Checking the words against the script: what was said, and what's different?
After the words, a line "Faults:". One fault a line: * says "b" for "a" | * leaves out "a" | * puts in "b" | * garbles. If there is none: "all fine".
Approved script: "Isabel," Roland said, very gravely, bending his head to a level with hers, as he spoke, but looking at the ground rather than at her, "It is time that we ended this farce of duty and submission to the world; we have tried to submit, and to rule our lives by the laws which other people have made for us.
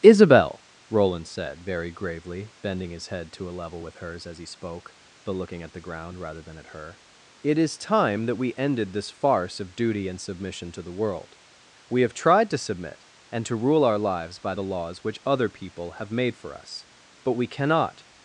"Isabel," Roland said, very gravely, bending his head to a level with hers, as he spoke, but looking at the ground rather than at her, "It is time that we ended this farce of duty and submission to the world; we have tried to submit, and to rule our lives by the laws which other people have made for us. But we cannot
Faults:
* puts in "But we cannot"